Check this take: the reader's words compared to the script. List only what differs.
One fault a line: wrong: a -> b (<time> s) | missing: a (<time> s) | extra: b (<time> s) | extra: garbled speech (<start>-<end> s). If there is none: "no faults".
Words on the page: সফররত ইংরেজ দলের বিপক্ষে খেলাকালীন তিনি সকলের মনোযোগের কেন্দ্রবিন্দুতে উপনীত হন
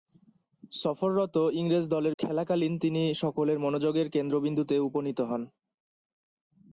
missing: বিপক্ষে (2.1 s)